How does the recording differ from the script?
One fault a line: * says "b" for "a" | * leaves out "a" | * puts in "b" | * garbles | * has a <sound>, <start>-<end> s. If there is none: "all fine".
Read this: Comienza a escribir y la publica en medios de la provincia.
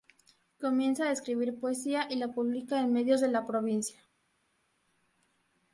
* puts in "poesía"